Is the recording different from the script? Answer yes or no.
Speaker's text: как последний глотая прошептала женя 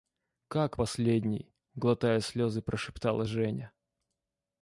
yes